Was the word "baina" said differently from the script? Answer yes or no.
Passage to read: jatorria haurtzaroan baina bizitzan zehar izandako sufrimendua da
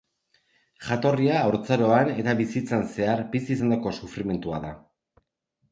yes